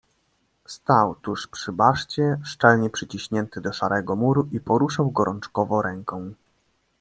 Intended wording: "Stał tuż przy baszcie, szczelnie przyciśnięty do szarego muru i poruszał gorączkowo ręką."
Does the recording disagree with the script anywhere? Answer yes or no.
no